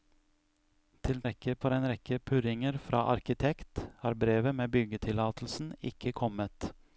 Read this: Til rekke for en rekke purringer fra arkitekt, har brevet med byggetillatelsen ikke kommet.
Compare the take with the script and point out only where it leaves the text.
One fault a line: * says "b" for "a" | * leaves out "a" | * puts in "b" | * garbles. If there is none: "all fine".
all fine